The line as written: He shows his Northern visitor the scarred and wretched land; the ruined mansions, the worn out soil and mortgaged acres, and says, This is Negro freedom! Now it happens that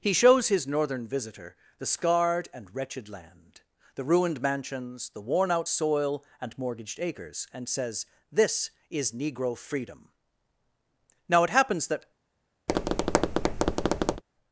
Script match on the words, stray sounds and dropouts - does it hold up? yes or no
no